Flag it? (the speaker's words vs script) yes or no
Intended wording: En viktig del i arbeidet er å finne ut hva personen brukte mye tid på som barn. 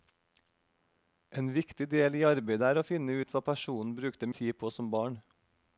yes